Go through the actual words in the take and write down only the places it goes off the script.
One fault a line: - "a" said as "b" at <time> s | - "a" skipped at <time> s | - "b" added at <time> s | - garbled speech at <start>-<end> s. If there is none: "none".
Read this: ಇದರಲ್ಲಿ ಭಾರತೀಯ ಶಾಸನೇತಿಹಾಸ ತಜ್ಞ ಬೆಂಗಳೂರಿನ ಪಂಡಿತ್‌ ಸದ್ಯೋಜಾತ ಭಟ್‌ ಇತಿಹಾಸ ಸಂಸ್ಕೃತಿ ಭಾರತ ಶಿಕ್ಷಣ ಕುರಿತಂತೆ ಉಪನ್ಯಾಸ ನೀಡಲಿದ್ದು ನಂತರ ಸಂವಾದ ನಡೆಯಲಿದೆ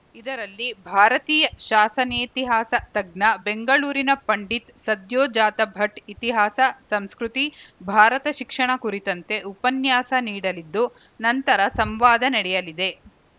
none